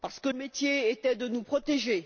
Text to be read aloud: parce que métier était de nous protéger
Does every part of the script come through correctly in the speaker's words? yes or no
yes